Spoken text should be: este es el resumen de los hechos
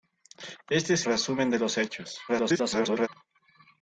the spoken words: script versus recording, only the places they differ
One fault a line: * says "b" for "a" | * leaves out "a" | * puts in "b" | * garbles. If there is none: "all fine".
* leaves out "el"
* garbles